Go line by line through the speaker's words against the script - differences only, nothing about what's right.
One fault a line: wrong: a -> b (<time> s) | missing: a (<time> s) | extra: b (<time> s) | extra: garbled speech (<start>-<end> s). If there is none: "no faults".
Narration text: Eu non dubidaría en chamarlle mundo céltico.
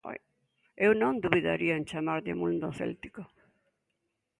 no faults